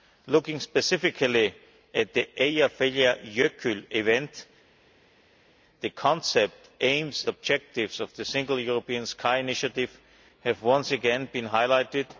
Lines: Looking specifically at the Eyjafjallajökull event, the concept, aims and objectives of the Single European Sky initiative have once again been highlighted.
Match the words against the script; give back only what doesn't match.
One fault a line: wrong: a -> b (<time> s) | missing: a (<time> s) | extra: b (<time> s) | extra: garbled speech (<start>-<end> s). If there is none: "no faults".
missing: and (7.2 s)